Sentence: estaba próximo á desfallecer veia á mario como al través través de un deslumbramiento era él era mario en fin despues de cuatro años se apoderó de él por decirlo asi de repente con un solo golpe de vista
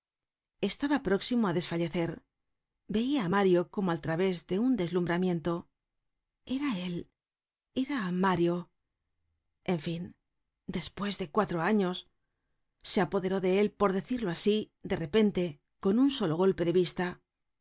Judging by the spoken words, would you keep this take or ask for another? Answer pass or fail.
fail